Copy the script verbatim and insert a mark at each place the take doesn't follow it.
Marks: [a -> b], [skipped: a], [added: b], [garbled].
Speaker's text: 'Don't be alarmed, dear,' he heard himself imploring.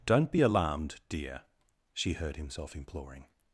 'Don't be alarmed, dear,' [he -> she] heard himself imploring.